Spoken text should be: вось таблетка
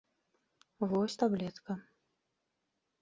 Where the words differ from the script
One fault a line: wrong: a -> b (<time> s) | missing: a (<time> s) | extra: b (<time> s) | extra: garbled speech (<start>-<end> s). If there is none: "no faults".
no faults